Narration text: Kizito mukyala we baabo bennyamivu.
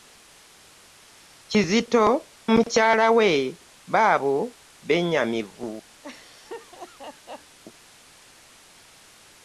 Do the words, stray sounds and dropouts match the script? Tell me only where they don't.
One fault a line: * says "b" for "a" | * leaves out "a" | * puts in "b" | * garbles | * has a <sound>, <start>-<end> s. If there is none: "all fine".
* has a laugh, 6.0-7.6 s